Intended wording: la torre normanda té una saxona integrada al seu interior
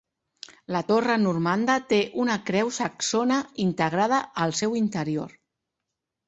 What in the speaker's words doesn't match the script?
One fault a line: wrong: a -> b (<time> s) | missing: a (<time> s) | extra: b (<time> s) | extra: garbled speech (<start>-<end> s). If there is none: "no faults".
extra: creu (2.5 s)